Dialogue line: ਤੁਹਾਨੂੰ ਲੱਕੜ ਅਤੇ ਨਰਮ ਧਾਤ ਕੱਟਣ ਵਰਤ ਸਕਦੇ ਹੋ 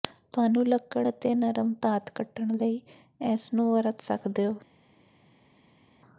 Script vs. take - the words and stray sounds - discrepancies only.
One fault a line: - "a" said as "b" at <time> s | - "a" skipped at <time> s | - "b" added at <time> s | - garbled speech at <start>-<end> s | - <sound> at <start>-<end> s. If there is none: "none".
- "ਲਈ ਇਸ ਨੂੰ" added at 2.6 s